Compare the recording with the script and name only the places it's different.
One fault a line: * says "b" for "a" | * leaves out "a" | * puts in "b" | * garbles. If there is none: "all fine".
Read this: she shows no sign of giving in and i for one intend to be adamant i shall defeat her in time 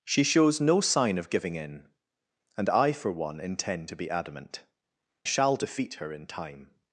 * leaves out "i"